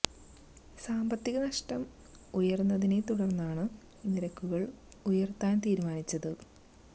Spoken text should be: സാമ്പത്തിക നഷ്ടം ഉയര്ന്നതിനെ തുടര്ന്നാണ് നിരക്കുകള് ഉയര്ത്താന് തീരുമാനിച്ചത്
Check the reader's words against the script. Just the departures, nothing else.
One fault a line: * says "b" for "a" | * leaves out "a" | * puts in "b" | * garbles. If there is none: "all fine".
all fine